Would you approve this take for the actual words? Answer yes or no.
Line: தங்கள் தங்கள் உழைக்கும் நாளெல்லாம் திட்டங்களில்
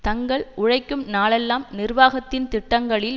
no